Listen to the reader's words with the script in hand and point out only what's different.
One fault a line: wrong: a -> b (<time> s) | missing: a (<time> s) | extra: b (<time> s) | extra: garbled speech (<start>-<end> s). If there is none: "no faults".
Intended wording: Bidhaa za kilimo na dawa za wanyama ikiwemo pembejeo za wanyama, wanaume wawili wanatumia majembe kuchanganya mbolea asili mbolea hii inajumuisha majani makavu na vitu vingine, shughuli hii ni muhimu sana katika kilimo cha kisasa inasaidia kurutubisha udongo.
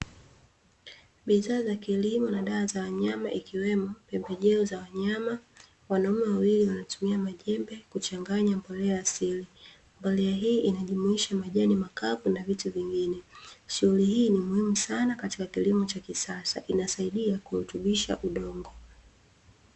no faults